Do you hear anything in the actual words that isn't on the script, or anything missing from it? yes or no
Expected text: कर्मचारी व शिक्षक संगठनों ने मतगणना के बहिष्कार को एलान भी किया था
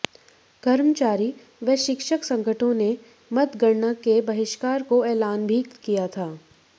no